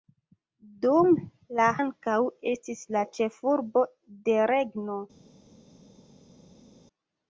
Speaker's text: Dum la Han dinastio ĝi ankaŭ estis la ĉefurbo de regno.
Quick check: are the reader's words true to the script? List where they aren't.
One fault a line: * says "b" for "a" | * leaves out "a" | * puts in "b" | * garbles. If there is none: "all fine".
* leaves out "Han dinastio ĝi"